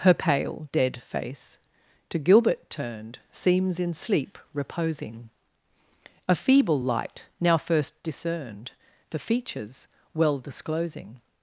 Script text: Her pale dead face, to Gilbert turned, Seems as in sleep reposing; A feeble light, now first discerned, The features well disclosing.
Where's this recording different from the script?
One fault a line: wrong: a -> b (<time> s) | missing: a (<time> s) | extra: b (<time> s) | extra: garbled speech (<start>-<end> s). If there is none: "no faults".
missing: as (3.8 s)